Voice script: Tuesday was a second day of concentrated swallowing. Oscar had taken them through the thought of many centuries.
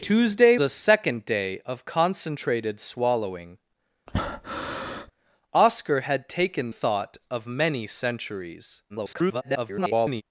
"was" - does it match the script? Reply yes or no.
no